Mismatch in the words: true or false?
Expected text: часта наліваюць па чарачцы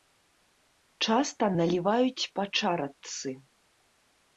false